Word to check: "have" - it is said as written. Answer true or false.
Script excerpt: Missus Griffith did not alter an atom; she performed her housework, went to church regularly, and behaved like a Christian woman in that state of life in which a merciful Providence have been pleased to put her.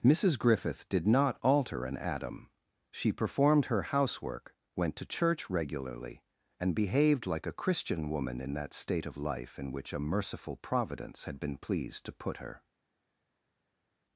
false